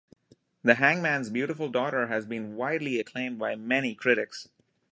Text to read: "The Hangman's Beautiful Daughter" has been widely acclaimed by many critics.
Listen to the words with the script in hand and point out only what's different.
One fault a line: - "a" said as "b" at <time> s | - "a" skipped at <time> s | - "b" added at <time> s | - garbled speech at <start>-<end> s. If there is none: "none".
none